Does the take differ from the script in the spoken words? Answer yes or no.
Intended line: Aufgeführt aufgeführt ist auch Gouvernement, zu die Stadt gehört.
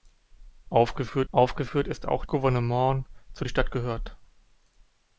no